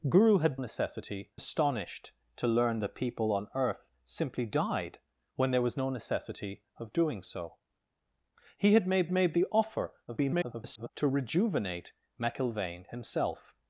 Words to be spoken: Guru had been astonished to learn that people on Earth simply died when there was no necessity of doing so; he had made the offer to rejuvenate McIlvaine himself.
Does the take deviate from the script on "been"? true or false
true